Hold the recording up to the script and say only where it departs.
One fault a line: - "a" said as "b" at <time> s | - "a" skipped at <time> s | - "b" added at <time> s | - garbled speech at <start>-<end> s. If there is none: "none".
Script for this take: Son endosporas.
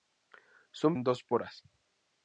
none